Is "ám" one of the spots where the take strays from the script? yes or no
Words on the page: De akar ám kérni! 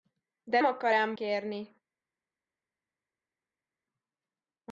no